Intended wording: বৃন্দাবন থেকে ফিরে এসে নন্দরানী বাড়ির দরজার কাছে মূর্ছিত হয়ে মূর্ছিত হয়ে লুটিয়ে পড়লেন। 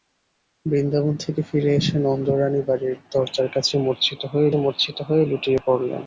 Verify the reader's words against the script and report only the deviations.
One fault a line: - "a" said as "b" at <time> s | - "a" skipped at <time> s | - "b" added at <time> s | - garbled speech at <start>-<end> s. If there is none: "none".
none